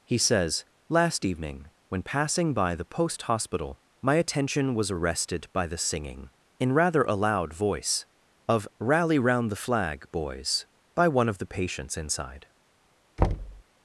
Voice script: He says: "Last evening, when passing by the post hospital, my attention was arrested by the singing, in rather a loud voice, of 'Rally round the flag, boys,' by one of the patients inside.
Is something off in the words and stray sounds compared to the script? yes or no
yes